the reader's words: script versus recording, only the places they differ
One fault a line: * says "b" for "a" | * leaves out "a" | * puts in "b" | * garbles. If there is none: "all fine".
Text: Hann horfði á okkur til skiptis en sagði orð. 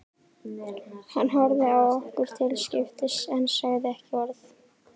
* puts in "ekki"